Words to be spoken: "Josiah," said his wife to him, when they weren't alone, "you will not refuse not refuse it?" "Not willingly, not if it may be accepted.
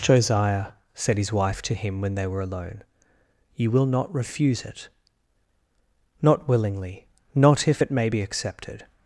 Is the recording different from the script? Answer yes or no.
yes